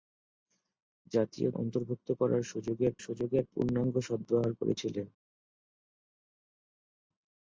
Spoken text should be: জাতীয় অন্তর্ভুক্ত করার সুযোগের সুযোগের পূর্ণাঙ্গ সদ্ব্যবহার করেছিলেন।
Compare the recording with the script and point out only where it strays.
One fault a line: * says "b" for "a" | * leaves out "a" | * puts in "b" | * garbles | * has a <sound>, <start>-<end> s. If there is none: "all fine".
all fine